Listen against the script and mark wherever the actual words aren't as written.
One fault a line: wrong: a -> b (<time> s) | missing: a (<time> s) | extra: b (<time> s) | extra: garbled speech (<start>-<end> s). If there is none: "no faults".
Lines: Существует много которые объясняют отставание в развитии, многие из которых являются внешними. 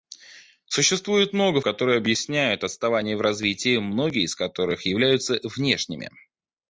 no faults